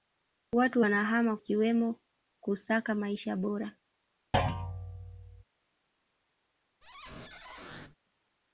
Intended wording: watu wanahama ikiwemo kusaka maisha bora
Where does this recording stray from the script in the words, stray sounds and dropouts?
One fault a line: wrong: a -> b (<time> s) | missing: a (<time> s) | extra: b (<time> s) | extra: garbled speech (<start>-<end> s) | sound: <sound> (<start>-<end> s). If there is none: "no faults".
sound: thud (4.3-5.4 s)
sound: squeak (6.8-8.0 s)